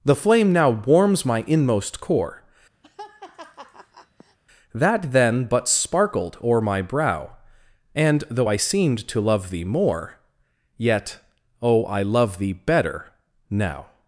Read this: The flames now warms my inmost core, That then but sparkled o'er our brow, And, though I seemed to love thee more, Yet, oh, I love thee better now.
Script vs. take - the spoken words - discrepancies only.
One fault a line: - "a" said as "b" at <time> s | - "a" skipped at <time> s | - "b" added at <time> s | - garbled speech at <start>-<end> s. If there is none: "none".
- "flames" said as "flame" at 0.1 s
- "our" said as "my" at 6.6 s